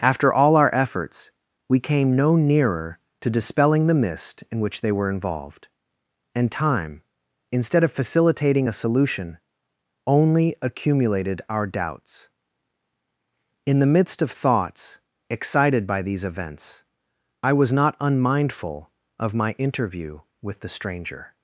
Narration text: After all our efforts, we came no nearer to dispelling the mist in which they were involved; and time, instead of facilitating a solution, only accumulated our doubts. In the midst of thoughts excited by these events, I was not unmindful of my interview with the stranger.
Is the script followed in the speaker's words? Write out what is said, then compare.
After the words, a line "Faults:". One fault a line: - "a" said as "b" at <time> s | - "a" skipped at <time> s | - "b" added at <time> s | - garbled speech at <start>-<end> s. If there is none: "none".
After all our efforts, we came no nearer to dispelling the mist in which they were involved; and time, instead of facilitating a solution, only accumulated our doubts. In the midst of thoughts excited by these events, I was not unmindful of my interview with the stranger.
Faults:
none